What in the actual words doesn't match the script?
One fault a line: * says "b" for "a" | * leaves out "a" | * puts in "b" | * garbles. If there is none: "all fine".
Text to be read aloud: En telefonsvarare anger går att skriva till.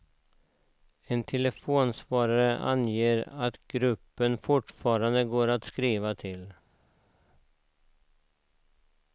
* puts in "att gruppen fortfarande"